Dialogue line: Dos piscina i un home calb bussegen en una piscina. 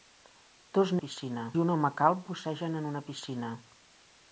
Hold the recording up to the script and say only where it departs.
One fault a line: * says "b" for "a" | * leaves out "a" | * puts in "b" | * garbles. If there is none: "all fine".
all fine